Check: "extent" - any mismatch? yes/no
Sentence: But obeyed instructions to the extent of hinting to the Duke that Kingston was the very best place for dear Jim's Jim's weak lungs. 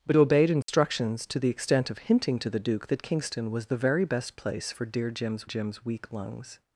no